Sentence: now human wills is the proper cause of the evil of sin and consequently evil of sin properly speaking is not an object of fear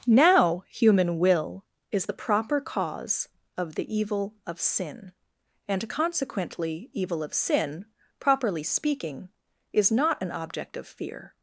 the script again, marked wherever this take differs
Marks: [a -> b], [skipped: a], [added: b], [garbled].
now human [wills -> will] is the proper cause of the evil of sin and consequently evil of sin properly speaking is not an object of fear